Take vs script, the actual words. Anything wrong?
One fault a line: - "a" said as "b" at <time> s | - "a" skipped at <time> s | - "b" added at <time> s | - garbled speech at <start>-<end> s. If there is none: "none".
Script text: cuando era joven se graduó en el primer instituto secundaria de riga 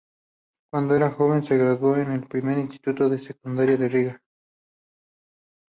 - "de" added at 3.1 s